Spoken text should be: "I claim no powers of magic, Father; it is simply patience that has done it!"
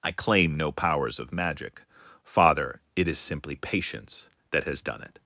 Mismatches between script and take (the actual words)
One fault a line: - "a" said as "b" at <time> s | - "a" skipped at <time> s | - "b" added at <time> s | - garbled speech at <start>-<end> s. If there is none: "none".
none